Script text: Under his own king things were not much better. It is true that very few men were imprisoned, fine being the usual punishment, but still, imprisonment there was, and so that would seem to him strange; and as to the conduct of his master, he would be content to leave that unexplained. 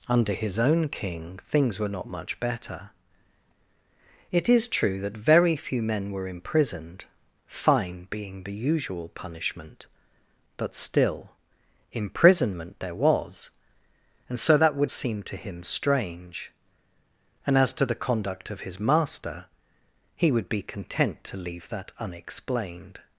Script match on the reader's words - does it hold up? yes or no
yes